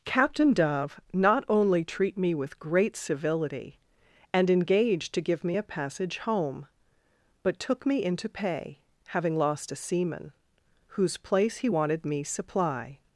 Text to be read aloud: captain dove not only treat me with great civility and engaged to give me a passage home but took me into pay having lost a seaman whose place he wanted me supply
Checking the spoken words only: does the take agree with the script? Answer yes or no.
yes